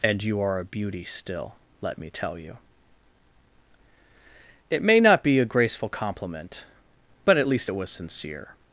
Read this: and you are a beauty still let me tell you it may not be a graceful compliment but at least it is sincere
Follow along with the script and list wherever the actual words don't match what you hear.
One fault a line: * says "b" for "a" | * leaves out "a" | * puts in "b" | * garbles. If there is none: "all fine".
* says "was" for "is"